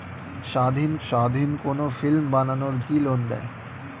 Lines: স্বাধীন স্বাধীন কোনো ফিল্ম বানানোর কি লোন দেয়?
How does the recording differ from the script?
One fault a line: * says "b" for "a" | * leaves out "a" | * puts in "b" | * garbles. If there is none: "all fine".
all fine